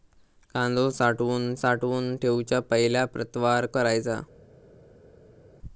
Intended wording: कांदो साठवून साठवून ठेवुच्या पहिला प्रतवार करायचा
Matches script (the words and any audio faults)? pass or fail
pass